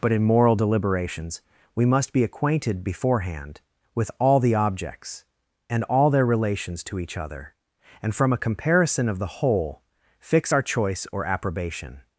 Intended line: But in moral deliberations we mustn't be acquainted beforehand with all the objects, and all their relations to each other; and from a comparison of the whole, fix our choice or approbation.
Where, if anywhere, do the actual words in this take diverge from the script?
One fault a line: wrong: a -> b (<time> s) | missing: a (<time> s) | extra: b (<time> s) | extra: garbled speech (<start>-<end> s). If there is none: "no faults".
wrong: mustn't -> must (1.9 s)